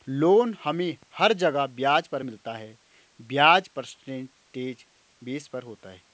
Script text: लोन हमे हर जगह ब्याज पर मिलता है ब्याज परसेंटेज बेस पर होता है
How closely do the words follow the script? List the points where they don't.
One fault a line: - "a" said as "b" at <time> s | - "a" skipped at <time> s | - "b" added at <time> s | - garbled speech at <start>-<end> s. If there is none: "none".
none